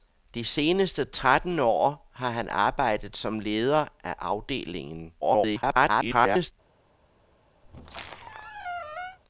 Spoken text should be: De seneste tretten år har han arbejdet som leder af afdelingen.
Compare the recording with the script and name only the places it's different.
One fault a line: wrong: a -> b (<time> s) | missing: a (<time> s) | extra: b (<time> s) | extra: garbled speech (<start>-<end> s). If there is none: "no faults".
extra: garbled speech (5.2-6.5 s)